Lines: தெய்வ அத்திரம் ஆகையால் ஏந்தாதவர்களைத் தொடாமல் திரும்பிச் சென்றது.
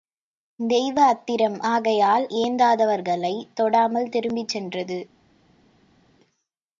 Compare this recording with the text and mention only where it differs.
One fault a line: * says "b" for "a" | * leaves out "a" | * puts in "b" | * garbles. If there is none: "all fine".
all fine